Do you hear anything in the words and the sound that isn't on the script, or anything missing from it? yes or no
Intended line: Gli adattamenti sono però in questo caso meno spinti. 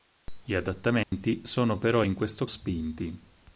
yes